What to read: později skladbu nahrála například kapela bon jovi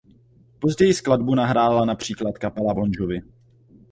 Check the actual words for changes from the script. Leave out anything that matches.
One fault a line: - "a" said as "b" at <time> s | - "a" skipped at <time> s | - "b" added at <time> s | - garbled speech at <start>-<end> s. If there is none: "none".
none